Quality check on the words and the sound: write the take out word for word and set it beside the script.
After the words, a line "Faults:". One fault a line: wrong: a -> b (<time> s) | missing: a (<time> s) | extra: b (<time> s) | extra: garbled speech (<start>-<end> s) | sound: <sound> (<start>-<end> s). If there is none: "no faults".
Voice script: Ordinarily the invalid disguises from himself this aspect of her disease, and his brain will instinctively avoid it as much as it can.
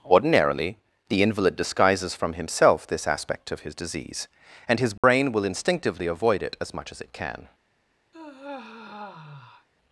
Ordinarily the invalid disguises from himself this aspect of his disease, and his brain will instinctively avoid it as much as it can.
Faults:
wrong: her -> his (3.6 s)
sound: dropout (5.0-5.0 s)
sound: sigh (8.1-9.7 s)